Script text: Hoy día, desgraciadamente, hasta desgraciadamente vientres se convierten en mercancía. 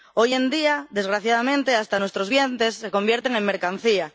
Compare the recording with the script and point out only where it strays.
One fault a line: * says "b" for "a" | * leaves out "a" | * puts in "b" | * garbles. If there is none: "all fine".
* puts in "en"
* says "nuestros" for "desgraciadamente"